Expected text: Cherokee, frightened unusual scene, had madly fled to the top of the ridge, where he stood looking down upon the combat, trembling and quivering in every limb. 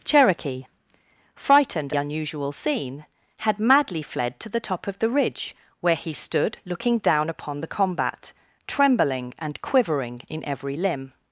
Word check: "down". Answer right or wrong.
right